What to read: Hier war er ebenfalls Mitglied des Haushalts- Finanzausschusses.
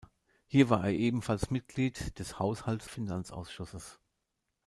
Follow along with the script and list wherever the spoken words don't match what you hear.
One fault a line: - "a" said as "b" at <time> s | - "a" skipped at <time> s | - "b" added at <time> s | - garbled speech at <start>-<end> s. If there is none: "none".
none